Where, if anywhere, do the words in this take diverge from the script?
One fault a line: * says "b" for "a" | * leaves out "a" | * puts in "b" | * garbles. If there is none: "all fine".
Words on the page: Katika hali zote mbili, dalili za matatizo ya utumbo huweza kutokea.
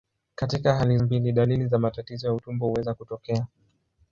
* leaves out "zote"